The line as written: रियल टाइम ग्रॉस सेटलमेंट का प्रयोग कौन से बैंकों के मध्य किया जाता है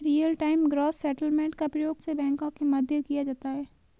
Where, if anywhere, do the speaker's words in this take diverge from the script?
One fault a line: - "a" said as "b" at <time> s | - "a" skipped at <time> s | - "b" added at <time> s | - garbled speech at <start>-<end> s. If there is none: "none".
- "कौन" skipped at 2.0 s